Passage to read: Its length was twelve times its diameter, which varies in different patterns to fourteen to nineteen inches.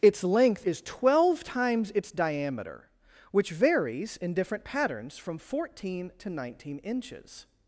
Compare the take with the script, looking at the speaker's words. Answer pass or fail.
fail